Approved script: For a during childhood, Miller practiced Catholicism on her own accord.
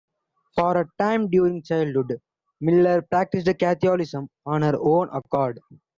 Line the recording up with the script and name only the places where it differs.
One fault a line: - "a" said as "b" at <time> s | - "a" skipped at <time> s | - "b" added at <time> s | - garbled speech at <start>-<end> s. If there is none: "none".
- "time" added at 1.0 s